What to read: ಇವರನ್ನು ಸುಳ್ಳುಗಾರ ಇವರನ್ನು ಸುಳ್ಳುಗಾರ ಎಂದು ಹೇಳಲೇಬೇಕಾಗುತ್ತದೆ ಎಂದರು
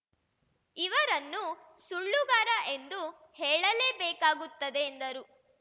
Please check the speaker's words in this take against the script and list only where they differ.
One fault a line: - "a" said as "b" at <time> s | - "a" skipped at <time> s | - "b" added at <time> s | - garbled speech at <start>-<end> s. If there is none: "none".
- "ಇವರನ್ನು ಸುಳ್ಳುಗಾರ" skipped at 2.5 s